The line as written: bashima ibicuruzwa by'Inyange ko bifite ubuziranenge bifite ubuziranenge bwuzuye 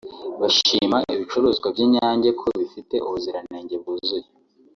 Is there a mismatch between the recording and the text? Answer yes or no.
yes